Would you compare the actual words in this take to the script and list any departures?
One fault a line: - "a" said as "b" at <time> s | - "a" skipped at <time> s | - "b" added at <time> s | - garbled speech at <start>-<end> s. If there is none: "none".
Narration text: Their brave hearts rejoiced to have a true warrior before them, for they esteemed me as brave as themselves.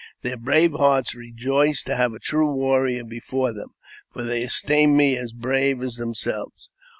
none